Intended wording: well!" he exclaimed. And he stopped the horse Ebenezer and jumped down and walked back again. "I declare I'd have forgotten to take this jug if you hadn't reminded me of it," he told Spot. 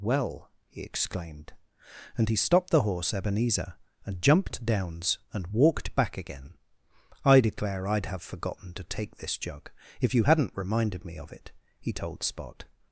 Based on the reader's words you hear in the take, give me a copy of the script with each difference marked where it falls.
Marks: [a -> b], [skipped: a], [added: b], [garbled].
well!" he exclaimed. And he stopped the horse Ebenezer and jumped [down -> downs] and walked back again. "I declare I'd have forgotten to take this jug if you hadn't reminded me of it," he told Spot.